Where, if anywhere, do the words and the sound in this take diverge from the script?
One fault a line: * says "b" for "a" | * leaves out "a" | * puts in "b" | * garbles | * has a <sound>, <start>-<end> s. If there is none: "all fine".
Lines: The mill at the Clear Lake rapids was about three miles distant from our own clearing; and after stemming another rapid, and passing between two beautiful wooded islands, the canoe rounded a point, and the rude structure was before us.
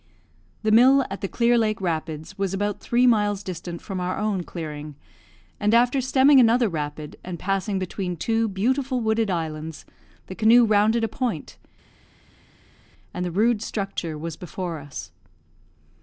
all fine